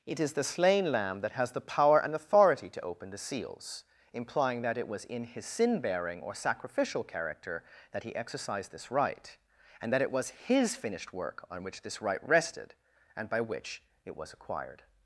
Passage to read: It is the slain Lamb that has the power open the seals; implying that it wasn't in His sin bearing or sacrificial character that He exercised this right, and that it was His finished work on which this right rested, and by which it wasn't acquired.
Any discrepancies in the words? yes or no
yes